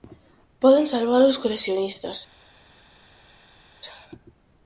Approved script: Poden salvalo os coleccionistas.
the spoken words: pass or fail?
pass